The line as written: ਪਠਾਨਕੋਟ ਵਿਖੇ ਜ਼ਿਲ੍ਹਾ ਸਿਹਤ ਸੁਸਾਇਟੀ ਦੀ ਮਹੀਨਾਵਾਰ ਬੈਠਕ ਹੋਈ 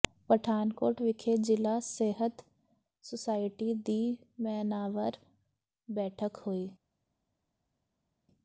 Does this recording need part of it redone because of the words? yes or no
no